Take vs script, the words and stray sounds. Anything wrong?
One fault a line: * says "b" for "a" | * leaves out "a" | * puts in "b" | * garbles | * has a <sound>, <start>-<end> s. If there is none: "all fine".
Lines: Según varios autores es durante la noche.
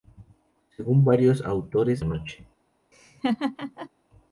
* leaves out "es durante la"
* has a laugh, 2.9-3.9 s